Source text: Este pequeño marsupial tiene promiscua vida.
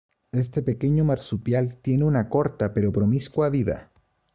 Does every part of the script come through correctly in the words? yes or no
no